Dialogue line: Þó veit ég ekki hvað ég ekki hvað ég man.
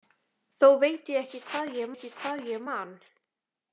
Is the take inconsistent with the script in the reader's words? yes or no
no